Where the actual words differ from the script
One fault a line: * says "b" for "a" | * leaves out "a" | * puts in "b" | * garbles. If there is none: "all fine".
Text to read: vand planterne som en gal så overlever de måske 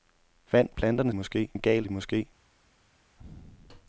* says "måske" for "som"
* leaves out "så overlever"